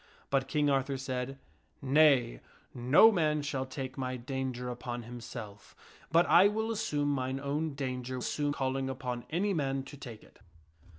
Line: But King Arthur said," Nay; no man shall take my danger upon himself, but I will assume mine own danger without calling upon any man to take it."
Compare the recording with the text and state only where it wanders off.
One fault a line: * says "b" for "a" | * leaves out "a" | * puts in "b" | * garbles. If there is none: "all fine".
* says "assume" for "without"